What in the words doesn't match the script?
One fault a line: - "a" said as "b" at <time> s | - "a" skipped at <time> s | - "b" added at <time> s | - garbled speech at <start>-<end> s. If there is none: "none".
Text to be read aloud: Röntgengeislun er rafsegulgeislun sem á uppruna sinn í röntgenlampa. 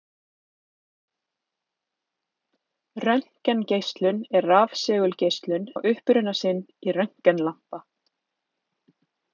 - "sem" skipped at 5.7 s